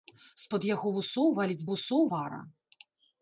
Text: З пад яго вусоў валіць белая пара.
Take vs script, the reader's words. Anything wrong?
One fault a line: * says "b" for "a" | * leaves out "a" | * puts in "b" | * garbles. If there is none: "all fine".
* says "вусоў" for "белая"